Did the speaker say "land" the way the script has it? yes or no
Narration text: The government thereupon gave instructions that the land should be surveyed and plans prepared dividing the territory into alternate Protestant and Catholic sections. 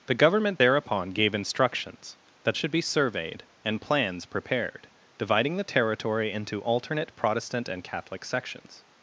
no